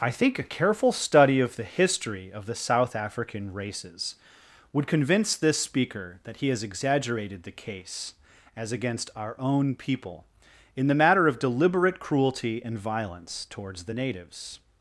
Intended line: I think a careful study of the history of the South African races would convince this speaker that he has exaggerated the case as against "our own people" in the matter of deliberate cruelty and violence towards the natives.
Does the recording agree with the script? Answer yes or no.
yes